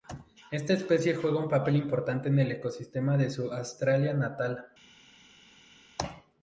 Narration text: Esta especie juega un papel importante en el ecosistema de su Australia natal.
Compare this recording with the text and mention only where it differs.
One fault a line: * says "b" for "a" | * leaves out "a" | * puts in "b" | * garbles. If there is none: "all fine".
all fine